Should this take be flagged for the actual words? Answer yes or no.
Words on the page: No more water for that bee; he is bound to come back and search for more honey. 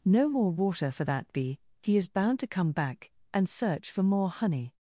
no